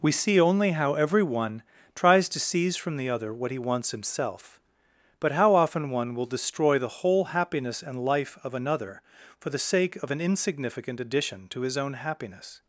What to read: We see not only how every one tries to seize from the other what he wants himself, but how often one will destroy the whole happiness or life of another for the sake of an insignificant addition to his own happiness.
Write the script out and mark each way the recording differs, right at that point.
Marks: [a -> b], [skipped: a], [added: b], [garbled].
We see [skipped: not] only how every one tries to seize from the other what he wants himself, but how often one will destroy the whole happiness [or -> and] life of another for the sake of an insignificant addition to his own happiness.